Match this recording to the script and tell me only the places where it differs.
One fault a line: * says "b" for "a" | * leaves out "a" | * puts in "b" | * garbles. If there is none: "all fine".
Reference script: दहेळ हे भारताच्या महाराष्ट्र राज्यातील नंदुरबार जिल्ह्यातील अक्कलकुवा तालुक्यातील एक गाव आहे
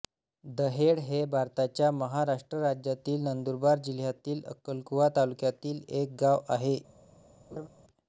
all fine